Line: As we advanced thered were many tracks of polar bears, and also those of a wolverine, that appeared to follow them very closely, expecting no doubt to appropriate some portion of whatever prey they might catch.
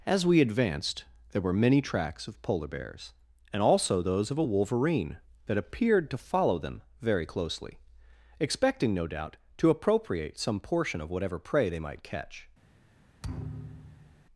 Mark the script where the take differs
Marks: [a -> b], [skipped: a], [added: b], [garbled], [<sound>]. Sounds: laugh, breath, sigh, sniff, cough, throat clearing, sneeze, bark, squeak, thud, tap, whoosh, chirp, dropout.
As we advanced [thered -> there] were many tracks of polar bears, and also those of a wolverine, that appeared to follow them very closely, expecting no doubt to appropriate some portion of whatever prey they might catch. [thud]